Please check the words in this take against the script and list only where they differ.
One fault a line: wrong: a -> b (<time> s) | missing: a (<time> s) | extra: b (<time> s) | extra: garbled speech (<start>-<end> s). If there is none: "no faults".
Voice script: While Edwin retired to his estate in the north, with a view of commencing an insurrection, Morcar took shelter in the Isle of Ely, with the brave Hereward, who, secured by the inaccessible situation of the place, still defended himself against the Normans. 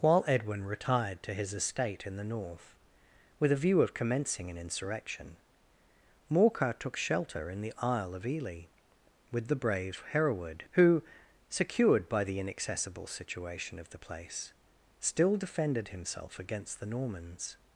no faults